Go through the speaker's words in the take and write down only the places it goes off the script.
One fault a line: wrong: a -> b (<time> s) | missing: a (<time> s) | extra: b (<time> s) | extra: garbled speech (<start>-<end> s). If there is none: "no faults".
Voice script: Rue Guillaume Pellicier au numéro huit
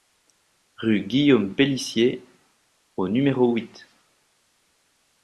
no faults